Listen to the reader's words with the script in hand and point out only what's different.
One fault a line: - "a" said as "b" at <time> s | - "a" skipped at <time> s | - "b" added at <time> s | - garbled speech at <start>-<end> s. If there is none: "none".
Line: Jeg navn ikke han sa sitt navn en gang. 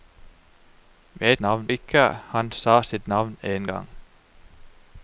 none